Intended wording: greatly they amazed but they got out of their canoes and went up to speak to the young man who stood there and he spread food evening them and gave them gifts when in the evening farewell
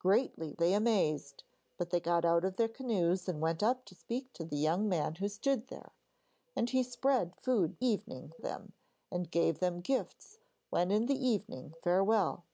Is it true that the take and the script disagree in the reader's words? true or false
false